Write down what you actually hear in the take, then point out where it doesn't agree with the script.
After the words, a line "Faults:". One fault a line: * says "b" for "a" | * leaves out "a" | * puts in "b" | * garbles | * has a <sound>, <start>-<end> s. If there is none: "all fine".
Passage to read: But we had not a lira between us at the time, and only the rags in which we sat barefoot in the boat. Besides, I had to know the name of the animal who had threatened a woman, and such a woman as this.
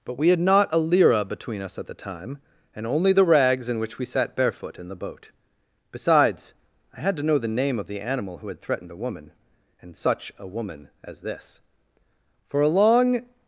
But we had not a lira between us at the time, and only the rags in which we sat barefoot in the boat. Besides, I had to know the name of the animal who had threatened a woman, and such a woman as this. "For a long
Faults:
* puts in "For a long"